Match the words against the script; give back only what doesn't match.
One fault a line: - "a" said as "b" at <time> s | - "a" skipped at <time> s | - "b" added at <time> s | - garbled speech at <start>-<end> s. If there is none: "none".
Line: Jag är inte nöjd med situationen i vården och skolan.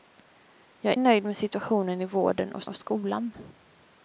- "inte" skipped at 1.0 s
- "och" added at 2.6 s